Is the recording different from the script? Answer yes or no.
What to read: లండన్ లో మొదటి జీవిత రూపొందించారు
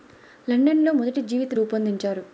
no